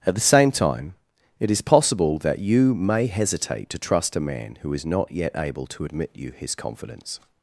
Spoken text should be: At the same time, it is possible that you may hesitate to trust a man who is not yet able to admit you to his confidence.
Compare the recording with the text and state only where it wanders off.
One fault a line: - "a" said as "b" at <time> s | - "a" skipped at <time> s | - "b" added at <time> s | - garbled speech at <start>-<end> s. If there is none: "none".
- "to" skipped at 6.3 s